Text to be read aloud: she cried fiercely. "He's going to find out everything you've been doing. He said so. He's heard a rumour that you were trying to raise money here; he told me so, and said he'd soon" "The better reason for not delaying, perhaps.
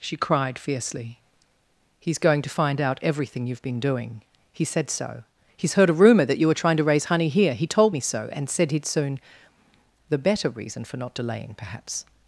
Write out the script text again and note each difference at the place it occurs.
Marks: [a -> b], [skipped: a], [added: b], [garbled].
she cried fiercely. "He's going to find out everything you've been doing. He said so. He's heard a rumour that you were trying to raise [money -> honey] here; he told me so, and said he'd soon" "The better reason for not delaying, perhaps.